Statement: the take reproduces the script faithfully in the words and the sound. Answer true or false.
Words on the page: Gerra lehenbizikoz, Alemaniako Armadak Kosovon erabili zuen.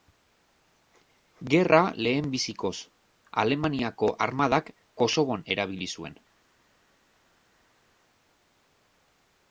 true